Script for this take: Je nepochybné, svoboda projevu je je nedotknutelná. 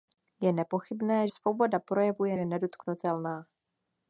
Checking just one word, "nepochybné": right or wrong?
right